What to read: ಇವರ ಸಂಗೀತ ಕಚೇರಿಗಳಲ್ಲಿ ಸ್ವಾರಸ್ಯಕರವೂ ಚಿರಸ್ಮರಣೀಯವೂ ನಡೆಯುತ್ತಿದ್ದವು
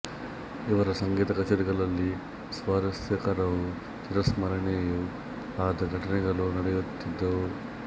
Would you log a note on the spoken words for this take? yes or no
yes